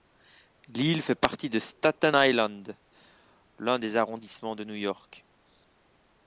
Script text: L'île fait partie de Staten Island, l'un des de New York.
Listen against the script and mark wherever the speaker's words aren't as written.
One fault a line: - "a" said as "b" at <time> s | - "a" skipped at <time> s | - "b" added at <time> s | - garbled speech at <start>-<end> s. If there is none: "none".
- "arrondissements" added at 4.0 s